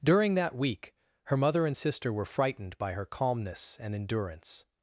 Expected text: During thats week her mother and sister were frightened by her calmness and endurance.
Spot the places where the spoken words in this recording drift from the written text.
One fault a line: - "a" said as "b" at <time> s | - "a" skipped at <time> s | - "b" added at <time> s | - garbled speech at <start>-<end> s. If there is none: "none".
- "thats" said as "that" at 0.3 s